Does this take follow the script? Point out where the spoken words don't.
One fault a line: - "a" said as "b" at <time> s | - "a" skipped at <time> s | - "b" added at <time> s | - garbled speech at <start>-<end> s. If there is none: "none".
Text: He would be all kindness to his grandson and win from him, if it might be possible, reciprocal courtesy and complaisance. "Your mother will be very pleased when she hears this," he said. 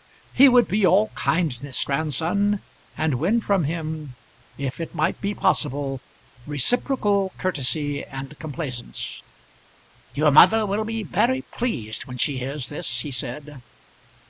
- "to his" skipped at 1.9 s